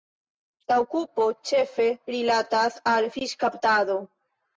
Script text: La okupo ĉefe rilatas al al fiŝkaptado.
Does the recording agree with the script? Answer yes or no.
no